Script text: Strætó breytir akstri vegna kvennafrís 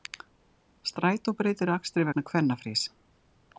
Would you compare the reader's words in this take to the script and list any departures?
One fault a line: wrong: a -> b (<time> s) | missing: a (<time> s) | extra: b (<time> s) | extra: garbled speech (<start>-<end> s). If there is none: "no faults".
no faults